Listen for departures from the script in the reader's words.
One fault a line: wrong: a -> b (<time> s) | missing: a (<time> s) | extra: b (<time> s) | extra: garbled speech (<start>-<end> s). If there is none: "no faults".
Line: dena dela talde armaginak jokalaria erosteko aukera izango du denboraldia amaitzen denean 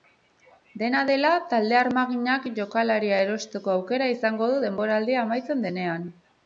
no faults